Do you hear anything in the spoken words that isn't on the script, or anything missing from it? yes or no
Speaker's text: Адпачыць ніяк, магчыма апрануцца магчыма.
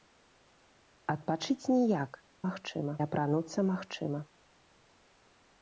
no